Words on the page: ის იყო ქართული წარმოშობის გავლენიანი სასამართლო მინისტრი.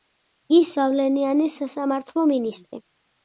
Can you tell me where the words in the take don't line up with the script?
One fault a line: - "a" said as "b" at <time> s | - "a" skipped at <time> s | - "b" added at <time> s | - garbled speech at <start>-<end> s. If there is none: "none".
- "იყო ქართული წარმოშობის" skipped at 0.7 s